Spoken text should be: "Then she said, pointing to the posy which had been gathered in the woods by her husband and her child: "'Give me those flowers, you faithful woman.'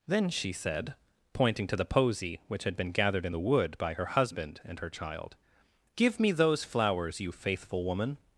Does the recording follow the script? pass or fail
fail